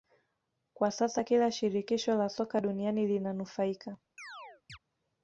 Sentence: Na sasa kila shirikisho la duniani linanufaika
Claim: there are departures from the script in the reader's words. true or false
true